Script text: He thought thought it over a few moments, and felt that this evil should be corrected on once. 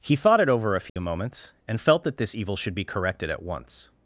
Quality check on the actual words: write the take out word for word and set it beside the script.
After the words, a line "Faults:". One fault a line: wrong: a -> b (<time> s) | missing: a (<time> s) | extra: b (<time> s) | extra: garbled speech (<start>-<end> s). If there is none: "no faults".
He thought it over a few moments, and felt that this evil should be corrected at once.
Faults:
missing: thought (0.4 s)
wrong: on -> at (3.3 s)